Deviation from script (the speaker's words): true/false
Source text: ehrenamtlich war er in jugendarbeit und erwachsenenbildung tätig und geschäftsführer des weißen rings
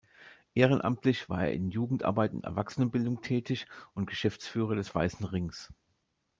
false